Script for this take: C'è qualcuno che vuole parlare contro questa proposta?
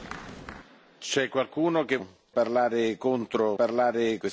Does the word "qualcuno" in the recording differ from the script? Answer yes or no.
no